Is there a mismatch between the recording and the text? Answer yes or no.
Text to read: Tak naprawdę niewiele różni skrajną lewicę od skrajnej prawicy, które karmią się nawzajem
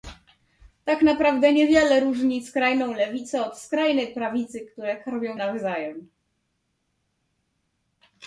yes